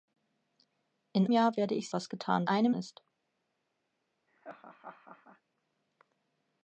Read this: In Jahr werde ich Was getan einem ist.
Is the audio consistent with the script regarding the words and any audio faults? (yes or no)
no